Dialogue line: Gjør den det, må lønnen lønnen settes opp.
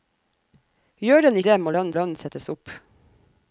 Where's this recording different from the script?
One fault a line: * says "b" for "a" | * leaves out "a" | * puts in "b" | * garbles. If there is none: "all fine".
all fine